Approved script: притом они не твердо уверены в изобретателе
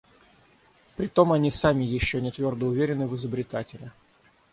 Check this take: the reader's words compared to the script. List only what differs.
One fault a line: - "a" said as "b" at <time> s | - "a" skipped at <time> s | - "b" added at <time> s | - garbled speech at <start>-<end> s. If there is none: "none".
- "сами еще" added at 1.5 s